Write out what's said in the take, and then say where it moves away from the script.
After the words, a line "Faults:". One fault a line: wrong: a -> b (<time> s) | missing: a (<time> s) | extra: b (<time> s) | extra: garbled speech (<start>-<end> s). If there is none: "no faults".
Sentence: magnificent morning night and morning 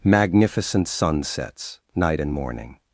magnificent sunsets night and morning
Faults:
wrong: morning -> sunsets (0.9 s)